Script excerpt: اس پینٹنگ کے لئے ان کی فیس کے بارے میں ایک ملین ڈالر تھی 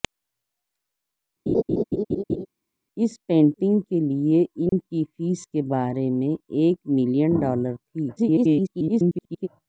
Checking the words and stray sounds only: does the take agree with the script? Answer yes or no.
no